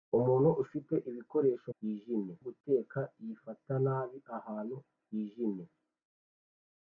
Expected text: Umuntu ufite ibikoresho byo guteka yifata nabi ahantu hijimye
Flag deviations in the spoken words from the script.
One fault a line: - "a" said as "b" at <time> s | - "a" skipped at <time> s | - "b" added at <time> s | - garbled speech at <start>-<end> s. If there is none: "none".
- "byo" said as "hijimye" at 1.8 s